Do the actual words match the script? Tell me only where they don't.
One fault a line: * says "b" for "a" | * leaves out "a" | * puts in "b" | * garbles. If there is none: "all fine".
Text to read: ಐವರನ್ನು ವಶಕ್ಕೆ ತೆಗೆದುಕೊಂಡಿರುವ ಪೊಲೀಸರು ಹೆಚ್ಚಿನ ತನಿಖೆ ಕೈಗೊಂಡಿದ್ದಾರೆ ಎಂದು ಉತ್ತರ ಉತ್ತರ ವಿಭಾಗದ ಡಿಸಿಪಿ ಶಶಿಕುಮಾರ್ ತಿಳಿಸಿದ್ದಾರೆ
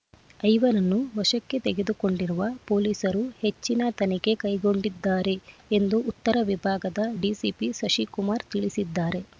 * leaves out "ಉತ್ತರ"